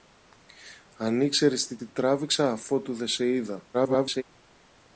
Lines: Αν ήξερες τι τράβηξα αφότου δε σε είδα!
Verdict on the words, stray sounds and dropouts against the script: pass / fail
fail